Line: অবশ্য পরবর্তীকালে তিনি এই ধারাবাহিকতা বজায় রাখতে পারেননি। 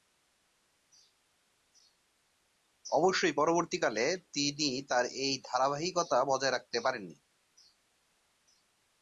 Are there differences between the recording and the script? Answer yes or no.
yes